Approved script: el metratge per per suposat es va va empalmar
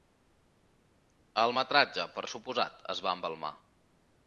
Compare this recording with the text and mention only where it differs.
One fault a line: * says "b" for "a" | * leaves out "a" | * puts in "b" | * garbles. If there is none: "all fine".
* leaves out "per"
* leaves out "va"